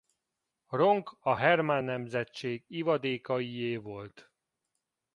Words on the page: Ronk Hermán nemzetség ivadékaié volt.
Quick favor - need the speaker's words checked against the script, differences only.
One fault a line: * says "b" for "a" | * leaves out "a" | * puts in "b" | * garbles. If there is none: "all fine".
* puts in "a"